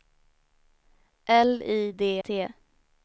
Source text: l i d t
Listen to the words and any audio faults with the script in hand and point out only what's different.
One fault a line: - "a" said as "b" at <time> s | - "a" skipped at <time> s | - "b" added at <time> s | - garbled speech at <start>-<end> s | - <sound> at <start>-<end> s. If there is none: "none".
none